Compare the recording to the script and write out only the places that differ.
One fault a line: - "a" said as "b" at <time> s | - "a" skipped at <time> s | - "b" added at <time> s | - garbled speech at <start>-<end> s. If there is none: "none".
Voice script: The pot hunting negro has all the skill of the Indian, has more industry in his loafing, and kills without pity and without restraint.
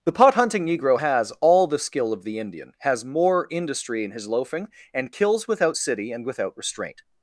- "pity" said as "city" at 5.8 s